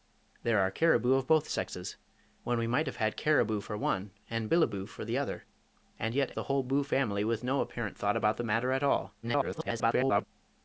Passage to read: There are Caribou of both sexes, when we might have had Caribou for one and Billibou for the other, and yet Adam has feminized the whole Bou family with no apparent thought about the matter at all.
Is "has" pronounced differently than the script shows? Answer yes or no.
yes